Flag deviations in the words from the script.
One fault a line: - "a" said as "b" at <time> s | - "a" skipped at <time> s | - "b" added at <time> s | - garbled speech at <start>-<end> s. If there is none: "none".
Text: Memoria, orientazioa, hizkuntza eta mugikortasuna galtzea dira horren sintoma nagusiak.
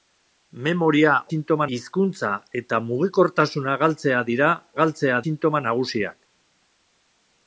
- "orientazioa" said as "sintoma" at 1.3 s
- "horren" said as "galtzea" at 4.8 s